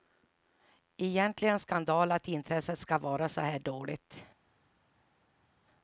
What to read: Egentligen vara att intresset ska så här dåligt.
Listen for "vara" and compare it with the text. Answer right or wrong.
wrong